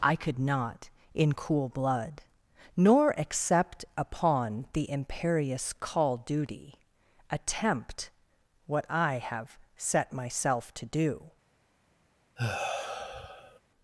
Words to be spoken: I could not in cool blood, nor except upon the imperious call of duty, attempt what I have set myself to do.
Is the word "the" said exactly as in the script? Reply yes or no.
yes